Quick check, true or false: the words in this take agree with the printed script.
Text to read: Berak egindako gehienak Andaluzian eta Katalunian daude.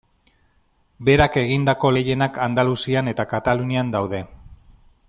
true